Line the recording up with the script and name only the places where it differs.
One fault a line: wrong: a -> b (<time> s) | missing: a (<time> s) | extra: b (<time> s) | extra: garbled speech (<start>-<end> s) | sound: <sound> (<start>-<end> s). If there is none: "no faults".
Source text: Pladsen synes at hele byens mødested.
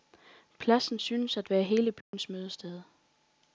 extra: være (1.5 s)
sound: dropout (2.0-2.1 s)